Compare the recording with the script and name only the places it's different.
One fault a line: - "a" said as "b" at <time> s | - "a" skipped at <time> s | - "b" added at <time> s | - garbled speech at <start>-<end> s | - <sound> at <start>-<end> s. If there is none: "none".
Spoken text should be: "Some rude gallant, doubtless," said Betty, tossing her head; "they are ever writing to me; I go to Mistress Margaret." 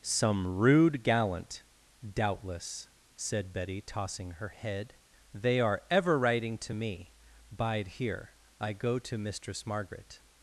- "Bide here" added at 7.5 s